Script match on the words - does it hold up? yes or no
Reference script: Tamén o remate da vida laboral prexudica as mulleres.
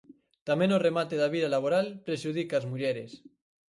yes